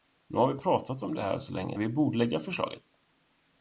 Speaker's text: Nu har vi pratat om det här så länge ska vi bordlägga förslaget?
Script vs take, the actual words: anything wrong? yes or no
yes